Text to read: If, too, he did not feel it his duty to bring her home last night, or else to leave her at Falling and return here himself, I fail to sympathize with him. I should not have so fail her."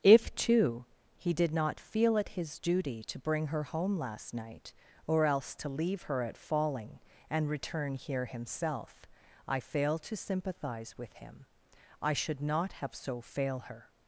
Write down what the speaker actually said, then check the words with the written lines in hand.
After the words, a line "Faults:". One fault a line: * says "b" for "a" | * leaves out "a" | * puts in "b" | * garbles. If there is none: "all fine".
If, too, he did not feel it his duty to bring her home last night, or else to leave her at Falling and return here himself, I fail to sympathize with him. I should not have so fail her."
Faults:
all fine